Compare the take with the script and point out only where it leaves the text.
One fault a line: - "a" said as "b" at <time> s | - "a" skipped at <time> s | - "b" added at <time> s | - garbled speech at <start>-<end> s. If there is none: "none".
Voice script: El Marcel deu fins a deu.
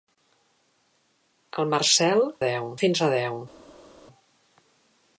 none